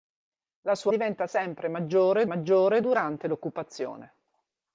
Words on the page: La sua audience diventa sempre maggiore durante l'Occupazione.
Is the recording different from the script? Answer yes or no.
yes